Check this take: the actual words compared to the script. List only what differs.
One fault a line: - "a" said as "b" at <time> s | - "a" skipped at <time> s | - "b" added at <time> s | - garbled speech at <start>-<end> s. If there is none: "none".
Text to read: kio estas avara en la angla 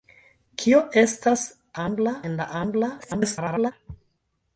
- "avara" said as "angla" at 1.8 s
- garbled speech at 3.0-3.7 s